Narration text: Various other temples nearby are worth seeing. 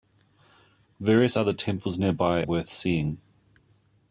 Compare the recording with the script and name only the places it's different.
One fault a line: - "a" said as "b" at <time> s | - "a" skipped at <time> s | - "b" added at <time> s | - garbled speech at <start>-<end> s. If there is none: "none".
- "are" skipped at 2.4 s